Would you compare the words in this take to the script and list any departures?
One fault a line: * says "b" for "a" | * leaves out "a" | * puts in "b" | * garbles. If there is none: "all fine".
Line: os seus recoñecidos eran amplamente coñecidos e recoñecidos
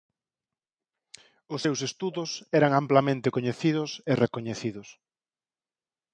* says "estudos" for "recoñecidos"